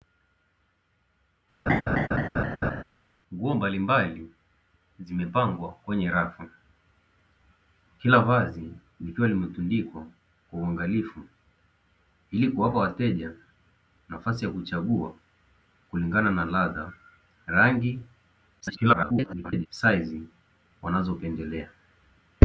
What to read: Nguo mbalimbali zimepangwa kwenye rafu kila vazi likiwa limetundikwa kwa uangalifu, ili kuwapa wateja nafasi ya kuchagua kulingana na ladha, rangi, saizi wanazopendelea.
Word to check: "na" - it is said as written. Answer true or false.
true